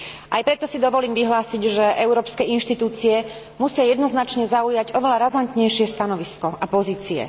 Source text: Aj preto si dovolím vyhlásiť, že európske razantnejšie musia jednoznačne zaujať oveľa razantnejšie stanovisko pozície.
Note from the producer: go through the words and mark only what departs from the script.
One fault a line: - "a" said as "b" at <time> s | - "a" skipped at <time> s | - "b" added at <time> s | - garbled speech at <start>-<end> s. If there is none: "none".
- "razantnejšie" said as "inštitúcie" at 2.4 s
- "a" added at 6.5 s